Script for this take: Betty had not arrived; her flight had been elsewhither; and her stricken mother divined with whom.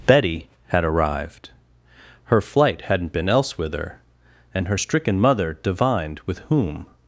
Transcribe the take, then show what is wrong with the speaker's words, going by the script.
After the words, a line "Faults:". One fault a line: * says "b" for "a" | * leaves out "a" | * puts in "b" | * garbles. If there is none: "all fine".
Betty had arrived; her flight hadn't been elsewhither; and her stricken mother divined with whom.
Faults:
* leaves out "not"
* says "hadn't" for "had"